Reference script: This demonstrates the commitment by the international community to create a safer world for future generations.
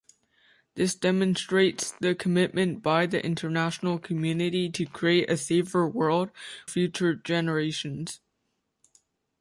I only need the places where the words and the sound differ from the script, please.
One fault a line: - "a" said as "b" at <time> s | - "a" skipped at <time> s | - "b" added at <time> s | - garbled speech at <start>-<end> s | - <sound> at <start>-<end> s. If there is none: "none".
- "for" skipped at 6.3 s